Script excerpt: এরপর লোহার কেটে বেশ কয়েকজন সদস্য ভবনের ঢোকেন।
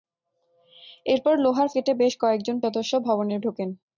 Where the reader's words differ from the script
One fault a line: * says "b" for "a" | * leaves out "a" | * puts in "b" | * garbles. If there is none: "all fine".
all fine